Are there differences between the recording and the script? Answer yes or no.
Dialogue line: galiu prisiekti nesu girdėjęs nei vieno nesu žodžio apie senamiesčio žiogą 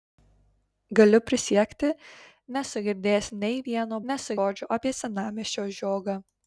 no